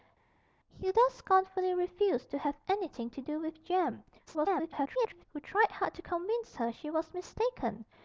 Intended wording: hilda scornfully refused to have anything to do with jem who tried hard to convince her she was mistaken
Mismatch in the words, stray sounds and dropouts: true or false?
true